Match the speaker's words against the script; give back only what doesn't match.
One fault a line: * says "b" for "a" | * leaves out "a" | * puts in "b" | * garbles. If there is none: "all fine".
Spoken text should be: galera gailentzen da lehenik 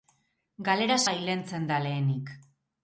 all fine